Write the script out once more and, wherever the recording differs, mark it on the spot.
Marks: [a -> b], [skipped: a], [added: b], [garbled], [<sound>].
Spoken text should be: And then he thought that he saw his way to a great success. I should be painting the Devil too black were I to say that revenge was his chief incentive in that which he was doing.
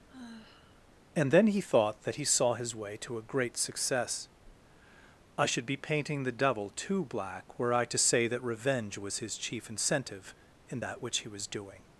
[sigh] And then he thought that he saw his way to a great success. I should be painting the Devil too black were I to say that revenge was his chief incentive in that which he was doing.